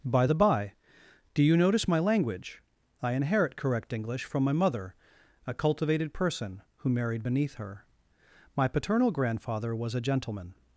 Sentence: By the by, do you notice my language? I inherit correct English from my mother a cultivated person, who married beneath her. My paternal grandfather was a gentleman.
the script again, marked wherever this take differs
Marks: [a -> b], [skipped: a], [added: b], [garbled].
By the by, do you notice my language? I inherit correct English from my mother a cultivated person, who married beneath her. My paternal grandfather was a gentleman.